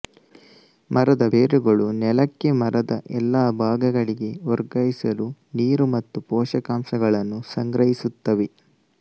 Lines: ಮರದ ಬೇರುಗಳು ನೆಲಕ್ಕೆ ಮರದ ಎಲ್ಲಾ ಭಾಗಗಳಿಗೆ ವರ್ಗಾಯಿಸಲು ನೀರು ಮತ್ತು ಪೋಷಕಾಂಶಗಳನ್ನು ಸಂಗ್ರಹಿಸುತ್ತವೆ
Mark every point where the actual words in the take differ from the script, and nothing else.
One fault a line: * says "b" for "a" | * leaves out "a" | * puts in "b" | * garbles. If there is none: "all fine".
all fine